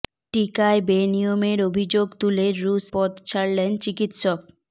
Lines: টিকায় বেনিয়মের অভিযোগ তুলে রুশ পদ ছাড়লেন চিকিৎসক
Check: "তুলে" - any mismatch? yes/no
no